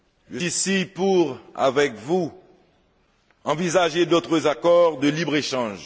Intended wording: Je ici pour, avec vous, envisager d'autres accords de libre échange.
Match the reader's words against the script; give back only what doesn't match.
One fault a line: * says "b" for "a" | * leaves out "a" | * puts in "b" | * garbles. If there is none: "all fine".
all fine